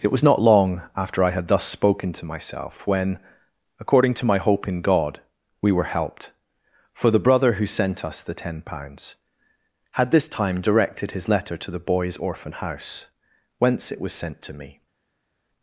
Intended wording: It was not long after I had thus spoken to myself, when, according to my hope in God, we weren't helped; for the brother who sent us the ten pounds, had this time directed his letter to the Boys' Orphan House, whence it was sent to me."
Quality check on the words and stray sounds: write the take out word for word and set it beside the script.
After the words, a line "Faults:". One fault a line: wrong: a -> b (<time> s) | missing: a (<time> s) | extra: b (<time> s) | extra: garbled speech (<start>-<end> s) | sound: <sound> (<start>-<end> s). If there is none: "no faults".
It was not long after I had thus spoken to myself, when, according to my hope in God, we were helped; for the brother who sent us the ten pounds, had this time directed his letter to the Boys' Orphan House, whence it was sent to me."
Faults:
wrong: weren't -> were (5.7 s)